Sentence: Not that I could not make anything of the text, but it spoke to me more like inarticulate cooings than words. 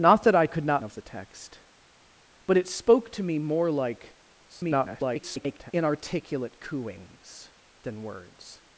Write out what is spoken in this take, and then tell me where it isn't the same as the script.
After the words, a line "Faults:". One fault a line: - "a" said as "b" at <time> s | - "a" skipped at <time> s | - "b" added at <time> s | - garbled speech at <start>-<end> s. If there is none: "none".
Not that I could not of the text, but it spoke to me more like [garbled] inarticulate cooings than words.
Faults:
- "make anything" skipped at 0.8 s
- garbled speech at 4.5-5.7 s